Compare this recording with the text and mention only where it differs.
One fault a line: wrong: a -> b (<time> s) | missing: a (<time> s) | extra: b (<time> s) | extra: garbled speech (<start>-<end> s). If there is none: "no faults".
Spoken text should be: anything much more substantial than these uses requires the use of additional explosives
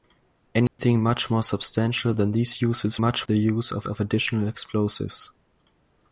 wrong: requires -> much (3.0 s)
extra: of (3.9 s)